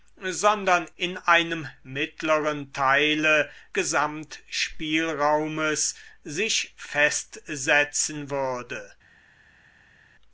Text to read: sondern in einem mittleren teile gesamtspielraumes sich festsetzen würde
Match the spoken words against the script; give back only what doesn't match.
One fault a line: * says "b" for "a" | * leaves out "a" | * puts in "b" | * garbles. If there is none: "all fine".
all fine